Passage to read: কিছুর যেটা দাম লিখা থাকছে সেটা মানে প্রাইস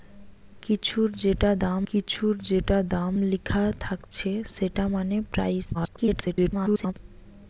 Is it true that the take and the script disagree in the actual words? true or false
true